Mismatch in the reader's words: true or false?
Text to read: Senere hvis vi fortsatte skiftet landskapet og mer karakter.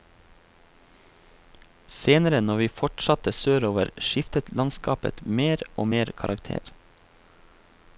true